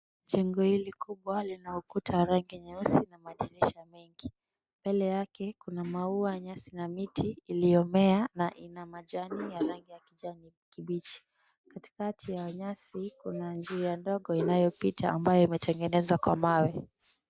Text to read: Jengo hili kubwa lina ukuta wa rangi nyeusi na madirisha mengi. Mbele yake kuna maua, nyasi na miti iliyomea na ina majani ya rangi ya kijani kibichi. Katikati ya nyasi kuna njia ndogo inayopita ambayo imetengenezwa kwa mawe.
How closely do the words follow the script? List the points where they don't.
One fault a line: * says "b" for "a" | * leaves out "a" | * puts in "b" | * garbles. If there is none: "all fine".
all fine